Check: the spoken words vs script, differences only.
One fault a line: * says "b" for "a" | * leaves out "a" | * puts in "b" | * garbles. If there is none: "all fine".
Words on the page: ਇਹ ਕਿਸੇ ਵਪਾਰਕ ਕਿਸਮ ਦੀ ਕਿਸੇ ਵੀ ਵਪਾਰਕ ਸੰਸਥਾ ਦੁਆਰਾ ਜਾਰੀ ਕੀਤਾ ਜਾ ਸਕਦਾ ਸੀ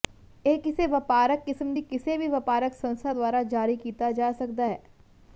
* says "ਹੈ" for "ਸੀ"